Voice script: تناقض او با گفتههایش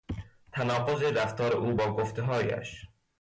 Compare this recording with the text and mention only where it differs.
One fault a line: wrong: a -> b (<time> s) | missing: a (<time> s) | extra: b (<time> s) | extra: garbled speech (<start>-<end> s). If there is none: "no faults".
extra: رفتار (1.0 s)